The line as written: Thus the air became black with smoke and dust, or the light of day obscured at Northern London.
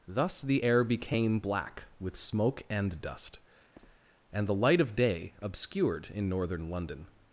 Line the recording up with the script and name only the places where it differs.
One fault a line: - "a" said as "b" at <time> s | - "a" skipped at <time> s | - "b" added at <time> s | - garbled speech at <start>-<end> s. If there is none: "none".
- "or" said as "and" at 4.3 s
- "at" said as "in" at 6.1 s